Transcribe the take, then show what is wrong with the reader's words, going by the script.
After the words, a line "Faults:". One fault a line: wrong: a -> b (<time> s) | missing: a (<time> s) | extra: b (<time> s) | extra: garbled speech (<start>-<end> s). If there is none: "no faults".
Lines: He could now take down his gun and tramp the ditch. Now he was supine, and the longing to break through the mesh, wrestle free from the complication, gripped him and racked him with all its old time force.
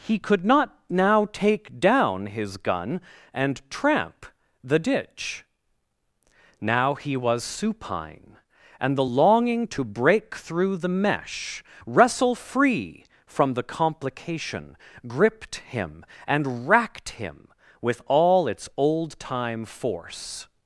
He could not now take down his gun and tramp the ditch. Now he was supine, and the longing to break through the mesh, wrestle free from the complication, gripped him and racked him with all its old time force.
Faults:
extra: not (0.4 s)